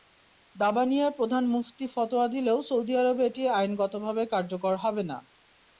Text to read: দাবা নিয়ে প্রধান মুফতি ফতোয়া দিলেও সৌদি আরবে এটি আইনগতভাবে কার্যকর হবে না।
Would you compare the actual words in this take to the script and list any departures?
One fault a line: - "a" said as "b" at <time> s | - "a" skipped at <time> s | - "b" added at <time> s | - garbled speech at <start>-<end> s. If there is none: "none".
none